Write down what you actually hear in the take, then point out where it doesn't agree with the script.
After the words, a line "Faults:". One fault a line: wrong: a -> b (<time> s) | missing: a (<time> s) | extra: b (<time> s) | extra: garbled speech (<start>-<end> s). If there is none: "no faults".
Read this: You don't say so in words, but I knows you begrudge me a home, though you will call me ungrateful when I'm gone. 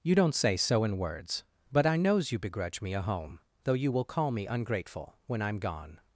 You don't say so in words, but I knows you begrudge me a home, though you will call me ungrateful when I'm gone.
Faults:
no faults